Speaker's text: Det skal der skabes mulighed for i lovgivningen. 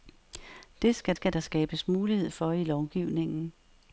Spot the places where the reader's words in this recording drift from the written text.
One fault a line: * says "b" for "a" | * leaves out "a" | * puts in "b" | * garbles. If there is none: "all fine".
* puts in "skal"